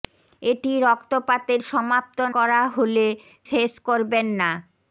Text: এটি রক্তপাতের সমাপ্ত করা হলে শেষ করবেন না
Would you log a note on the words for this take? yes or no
no